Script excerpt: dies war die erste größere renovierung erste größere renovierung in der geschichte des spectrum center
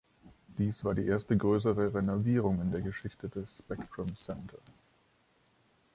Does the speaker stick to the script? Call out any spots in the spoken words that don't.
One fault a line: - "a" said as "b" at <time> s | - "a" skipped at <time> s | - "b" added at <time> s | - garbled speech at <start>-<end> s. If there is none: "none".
- "erste größere renovierung" skipped at 2.6 s